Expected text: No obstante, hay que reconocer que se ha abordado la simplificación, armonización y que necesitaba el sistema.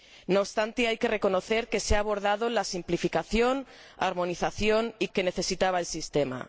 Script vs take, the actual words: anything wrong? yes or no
no